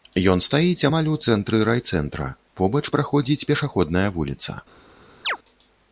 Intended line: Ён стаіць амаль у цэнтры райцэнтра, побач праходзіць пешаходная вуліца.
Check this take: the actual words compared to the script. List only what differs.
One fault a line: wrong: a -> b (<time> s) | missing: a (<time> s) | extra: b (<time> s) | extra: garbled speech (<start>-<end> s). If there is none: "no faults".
no faults